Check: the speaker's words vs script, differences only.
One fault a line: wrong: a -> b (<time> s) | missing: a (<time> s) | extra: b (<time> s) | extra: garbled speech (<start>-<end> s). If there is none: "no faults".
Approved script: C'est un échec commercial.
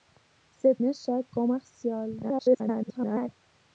missing: un (0.8 s)
extra: garbled speech (2.2-3.3 s)